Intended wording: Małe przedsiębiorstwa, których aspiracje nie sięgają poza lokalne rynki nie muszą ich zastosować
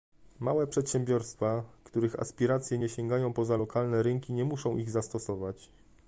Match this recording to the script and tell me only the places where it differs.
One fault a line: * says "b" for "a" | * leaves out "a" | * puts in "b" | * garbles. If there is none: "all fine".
all fine